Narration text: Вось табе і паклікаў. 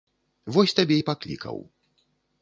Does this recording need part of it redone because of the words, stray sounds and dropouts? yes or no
no